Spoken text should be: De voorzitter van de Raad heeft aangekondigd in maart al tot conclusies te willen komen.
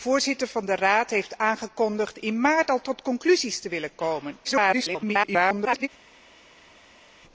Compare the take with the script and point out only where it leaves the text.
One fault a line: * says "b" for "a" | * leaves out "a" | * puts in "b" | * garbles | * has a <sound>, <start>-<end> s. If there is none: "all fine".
* garbles